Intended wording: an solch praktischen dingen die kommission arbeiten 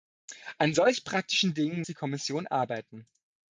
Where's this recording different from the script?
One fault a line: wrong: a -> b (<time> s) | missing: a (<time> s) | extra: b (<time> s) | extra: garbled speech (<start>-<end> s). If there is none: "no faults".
no faults